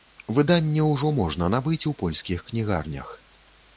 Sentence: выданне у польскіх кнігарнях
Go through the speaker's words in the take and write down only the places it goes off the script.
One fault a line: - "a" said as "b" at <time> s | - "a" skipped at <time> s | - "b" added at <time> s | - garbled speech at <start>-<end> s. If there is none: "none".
- "ўжо можна набыць" added at 0.9 s